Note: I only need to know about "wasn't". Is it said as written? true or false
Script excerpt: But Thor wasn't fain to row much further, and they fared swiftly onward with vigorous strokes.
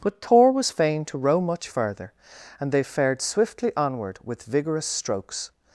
false